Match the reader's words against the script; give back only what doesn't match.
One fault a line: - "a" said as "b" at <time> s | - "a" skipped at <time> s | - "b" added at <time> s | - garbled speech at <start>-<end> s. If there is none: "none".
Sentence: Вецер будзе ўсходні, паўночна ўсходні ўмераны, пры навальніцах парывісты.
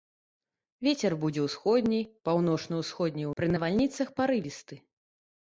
- "ўмераны" skipped at 3.3 s